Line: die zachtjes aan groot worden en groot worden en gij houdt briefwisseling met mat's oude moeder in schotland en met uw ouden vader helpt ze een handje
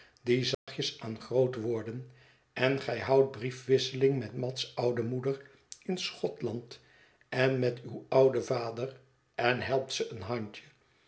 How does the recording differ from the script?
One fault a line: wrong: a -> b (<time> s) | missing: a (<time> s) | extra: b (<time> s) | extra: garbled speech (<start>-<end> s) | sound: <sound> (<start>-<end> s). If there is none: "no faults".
sound: dropout (0.5-0.7 s)
missing: groot worden en (2.8 s)
extra: en (9.3 s)